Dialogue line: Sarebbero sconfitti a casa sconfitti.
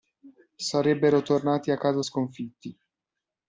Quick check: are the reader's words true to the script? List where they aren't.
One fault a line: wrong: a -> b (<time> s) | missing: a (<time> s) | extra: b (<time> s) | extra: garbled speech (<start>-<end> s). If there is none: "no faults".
wrong: sconfitti -> tornati (1.2 s)